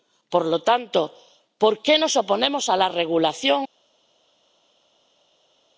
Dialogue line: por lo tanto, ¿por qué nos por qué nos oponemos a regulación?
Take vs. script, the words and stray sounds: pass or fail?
fail